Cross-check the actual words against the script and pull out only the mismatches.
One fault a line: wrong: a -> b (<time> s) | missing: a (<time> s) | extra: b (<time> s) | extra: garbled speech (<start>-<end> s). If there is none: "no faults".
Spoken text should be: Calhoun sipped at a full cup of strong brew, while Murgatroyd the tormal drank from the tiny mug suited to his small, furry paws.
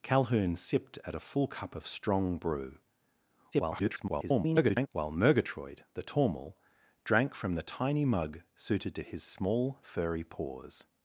extra: garbled speech (3.5-4.9 s)